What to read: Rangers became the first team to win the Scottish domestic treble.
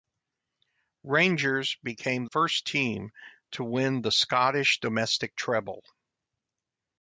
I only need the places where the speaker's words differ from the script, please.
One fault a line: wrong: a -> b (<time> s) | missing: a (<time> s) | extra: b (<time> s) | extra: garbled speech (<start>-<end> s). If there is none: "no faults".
missing: the (2.2 s)